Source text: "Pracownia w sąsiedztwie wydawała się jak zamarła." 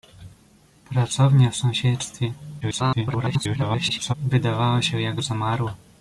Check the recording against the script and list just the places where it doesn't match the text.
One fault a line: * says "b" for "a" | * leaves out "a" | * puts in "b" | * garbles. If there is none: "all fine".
* garbles